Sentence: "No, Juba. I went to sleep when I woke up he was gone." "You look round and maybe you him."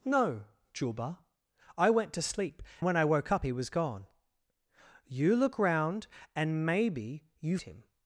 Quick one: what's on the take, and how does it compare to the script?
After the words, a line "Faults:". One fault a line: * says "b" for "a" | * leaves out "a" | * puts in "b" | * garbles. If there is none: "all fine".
"No, Juba. I went to sleep when I woke up he was gone." "You look round and maybe you him."
Faults:
all fine